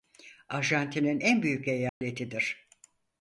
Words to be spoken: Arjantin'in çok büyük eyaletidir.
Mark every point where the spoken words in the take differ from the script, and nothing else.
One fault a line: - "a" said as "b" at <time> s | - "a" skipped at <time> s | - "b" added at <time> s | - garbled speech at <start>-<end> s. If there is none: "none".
- "çok" said as "en" at 1.2 s